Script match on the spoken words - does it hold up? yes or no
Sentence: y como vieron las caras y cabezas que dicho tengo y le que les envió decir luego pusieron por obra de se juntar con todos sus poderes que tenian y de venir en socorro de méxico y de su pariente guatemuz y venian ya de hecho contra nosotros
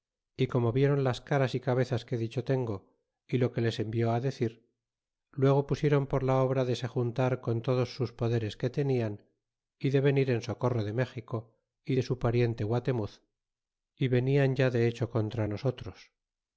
no